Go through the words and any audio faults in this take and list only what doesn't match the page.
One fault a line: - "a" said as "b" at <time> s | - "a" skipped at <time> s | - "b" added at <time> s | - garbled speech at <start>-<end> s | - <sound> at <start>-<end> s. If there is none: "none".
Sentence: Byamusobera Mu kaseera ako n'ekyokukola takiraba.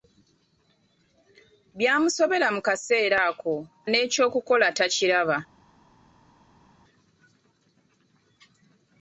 none